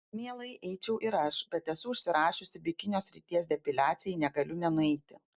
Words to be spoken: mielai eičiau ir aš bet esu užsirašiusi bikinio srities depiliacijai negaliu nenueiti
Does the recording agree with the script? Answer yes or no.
yes